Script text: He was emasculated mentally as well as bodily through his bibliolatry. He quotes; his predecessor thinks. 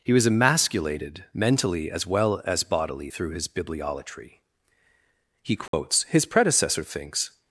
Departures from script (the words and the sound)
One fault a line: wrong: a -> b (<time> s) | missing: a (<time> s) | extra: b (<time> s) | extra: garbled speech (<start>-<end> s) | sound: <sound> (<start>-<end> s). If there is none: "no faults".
sound: dropout (5.7-5.7 s)